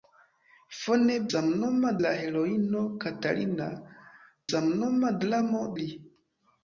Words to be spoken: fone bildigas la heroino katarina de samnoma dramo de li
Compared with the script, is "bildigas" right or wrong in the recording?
wrong